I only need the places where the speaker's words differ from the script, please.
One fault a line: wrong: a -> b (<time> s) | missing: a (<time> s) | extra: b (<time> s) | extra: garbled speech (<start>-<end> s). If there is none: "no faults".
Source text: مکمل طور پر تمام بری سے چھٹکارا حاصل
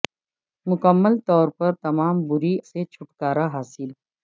no faults